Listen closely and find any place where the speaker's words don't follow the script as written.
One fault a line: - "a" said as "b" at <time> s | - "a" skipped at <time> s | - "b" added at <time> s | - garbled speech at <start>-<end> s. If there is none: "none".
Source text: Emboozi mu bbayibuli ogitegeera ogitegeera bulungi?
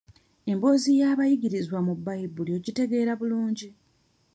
- "y'abayigirizwa" added at 1.0 s
- "ogitegeera" skipped at 3.1 s